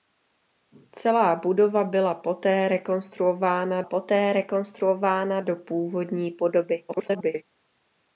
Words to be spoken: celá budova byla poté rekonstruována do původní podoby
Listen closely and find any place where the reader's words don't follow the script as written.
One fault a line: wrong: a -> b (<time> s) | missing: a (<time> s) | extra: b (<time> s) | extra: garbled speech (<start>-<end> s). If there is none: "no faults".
extra: poté rekonstruována (3.8 s)
extra: garbled speech (6.9-7.4 s)